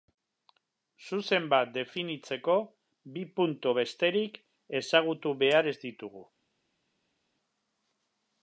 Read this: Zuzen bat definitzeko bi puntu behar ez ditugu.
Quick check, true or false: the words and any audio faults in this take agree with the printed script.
false